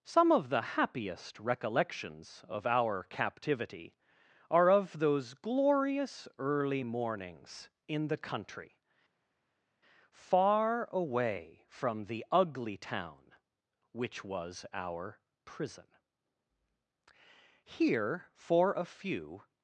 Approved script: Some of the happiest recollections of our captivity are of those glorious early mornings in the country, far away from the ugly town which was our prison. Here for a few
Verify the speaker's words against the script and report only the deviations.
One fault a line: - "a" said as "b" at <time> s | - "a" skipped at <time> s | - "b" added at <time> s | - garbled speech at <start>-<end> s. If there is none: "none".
none